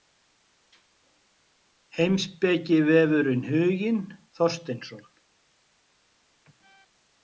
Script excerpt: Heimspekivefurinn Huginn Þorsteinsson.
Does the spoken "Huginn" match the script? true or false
true